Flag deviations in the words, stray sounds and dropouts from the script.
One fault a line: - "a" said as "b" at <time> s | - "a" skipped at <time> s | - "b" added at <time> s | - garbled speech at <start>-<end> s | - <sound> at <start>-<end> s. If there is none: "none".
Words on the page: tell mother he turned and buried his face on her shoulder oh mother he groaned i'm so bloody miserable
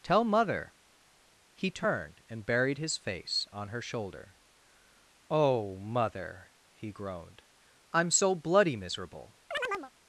- chirp at 9.5-9.9 s